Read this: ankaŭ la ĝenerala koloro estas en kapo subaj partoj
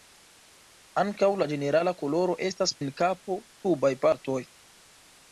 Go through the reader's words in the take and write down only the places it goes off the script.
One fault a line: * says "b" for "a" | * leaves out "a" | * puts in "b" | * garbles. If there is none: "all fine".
all fine